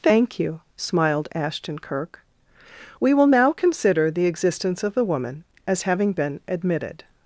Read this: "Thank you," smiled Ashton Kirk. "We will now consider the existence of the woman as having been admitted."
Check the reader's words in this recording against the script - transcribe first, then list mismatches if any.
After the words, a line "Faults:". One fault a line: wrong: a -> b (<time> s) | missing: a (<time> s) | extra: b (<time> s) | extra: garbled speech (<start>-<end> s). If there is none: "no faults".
"Thank you," smiled Ashton Kirk. "We will now consider the existence of the woman as having been admitted."
Faults:
no faults